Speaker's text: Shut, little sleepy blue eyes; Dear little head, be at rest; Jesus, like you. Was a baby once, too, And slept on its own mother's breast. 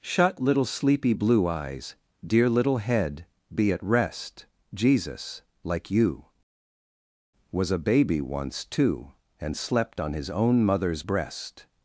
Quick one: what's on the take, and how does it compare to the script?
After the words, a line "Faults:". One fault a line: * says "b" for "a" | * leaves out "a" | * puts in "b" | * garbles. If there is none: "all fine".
Shut, little sleepy blue eyes; Dear little head, be at rest; Jesus, like you. Was a baby once, too, And slept on his own mother's breast.
Faults:
* says "his" for "its"